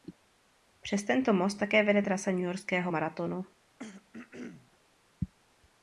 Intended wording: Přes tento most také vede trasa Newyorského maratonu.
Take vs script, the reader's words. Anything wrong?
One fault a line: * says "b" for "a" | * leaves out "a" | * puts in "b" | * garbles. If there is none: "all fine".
all fine